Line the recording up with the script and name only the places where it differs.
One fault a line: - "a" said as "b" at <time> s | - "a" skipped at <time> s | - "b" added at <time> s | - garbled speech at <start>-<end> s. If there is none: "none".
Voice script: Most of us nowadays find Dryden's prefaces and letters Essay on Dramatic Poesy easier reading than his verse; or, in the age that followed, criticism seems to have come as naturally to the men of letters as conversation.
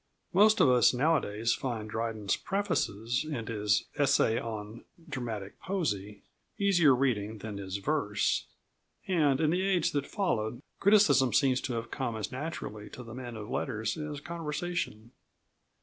- "letters" said as "his" at 3.5 s
- "or" said as "and" at 9.1 s